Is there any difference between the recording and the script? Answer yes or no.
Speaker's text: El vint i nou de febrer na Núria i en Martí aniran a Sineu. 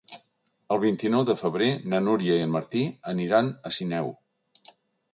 no